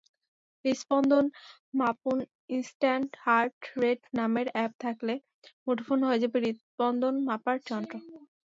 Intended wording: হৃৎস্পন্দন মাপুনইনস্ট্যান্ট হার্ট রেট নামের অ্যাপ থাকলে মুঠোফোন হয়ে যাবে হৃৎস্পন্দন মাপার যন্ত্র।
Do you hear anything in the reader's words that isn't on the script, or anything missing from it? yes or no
no